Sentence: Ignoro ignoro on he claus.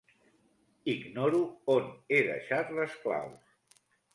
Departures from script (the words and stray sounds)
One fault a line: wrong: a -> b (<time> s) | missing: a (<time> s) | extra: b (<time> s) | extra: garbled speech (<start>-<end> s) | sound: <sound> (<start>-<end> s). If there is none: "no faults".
missing: ignoro (1.4 s)
extra: deixat les (2.3 s)